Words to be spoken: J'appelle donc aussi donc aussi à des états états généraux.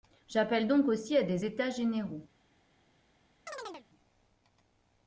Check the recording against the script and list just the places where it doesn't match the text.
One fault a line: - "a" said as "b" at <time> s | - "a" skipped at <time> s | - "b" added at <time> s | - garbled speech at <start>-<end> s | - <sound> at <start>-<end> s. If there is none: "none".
- "donc aussi" skipped at 1.2 s
- "états" skipped at 1.7 s
- chirp at 3.5-3.9 s